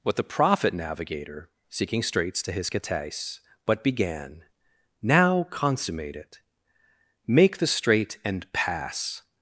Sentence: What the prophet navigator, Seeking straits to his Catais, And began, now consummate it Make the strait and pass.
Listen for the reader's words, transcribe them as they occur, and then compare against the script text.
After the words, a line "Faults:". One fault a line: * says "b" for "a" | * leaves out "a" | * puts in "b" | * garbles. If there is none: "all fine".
What the prophet navigator, Seeking straits to his Catais, But began, now consummate it Make the strait and pass.
Faults:
* says "But" for "And"